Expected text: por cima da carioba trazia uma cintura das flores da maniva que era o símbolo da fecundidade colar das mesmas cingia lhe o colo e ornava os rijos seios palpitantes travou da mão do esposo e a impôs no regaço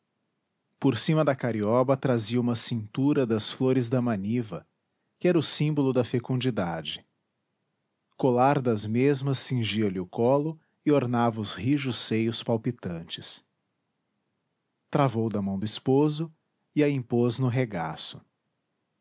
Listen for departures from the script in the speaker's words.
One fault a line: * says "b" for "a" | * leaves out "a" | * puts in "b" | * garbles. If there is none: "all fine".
all fine